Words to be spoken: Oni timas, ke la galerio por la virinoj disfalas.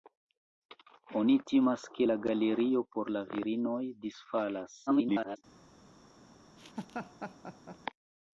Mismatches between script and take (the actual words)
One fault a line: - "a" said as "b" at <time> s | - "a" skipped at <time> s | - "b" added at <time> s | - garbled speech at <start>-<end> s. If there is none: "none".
- garbled speech at 4.9-5.4 s